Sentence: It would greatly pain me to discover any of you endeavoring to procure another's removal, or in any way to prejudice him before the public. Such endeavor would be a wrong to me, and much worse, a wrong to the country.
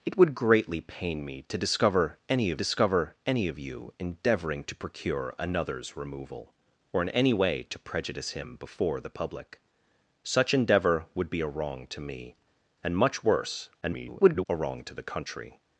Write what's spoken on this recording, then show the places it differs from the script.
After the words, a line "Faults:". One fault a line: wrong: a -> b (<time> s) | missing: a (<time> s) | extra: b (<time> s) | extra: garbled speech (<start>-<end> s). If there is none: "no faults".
It would greatly pain me to discover any of discover any of you endeavoring to procure another's removal, or in any way to prejudice him before the public. Such endeavor would be a wrong to me, and much worse, [garbled] a wrong to the country.
Faults:
extra: discover any of (2.6 s)
extra: garbled speech (13.8-14.5 s)